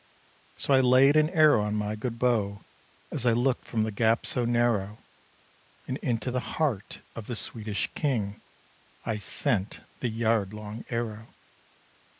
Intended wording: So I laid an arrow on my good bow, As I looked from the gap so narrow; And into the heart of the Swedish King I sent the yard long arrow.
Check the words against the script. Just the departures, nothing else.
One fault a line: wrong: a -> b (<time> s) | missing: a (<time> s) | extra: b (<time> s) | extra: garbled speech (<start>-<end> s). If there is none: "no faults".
no faults